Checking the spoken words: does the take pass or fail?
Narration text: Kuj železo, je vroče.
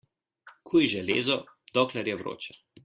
fail